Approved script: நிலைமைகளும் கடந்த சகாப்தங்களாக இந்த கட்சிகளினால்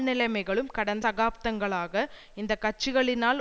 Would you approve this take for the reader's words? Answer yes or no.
yes